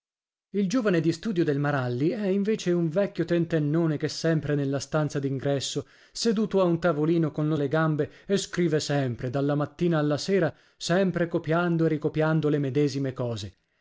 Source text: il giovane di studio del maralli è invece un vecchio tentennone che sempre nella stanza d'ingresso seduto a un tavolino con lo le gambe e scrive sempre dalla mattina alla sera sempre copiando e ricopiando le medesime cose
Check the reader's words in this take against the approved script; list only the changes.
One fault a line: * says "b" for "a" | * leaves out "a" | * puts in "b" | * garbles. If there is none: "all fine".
all fine